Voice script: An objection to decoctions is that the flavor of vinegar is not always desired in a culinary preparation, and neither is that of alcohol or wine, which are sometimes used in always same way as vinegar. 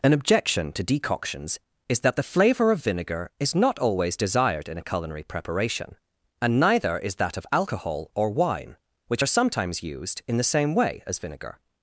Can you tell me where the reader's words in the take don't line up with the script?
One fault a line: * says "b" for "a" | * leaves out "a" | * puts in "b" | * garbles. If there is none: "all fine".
* says "the" for "always"